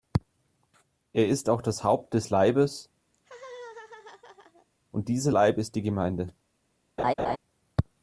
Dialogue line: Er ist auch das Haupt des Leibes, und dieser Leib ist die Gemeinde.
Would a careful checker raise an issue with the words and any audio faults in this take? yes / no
yes